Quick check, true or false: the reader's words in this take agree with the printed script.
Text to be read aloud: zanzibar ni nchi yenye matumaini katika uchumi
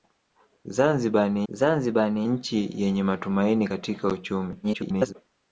false